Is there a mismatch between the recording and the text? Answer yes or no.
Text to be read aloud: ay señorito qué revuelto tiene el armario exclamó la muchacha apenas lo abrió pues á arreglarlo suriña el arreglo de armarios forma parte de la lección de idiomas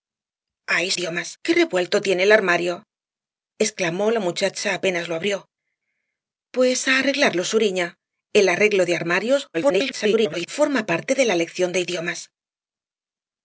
yes